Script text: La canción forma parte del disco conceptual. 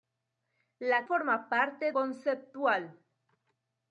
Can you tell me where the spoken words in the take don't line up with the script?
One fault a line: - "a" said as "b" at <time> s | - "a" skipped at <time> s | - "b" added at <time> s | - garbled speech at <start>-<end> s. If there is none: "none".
- "canción" skipped at 1.1 s
- "del disco" skipped at 1.9 s